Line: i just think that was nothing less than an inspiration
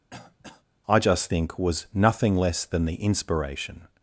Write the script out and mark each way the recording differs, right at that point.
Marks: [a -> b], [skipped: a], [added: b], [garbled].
i just think [skipped: that] was nothing less than [an -> the] inspiration